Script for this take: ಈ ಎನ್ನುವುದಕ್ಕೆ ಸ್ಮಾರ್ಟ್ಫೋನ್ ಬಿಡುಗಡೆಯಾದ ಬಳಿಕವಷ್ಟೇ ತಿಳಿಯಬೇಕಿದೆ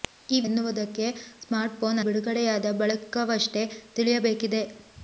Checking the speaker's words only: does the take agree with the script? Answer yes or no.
yes